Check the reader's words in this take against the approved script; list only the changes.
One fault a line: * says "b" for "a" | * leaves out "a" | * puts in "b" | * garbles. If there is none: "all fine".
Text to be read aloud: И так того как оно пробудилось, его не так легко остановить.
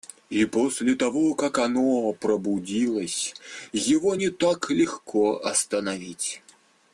* says "после" for "так"